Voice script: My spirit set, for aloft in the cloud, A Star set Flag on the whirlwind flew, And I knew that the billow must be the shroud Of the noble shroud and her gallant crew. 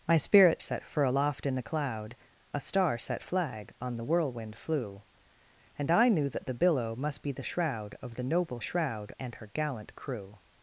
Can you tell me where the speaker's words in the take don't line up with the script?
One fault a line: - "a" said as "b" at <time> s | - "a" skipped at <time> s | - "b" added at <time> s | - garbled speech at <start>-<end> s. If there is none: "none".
none